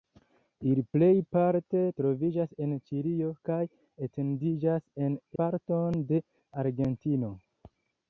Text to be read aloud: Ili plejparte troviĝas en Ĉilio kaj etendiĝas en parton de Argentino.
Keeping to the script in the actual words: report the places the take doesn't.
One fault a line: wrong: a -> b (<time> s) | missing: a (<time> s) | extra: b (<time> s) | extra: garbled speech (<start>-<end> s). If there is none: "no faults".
no faults